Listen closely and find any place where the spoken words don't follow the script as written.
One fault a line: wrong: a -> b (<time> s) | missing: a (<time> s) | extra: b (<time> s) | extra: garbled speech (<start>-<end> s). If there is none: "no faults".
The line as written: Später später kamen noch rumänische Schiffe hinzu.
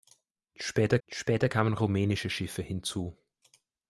no faults